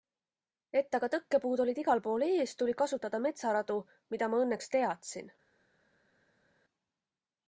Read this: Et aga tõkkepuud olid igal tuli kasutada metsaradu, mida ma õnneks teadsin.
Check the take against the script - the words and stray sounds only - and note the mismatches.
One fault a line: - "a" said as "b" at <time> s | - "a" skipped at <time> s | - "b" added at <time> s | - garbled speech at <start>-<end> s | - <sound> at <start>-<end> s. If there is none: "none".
- "pool ees" added at 2.1 s